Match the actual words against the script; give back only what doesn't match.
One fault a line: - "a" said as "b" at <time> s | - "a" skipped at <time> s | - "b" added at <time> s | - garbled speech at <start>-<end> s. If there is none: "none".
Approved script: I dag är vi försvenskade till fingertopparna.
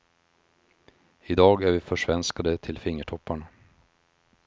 none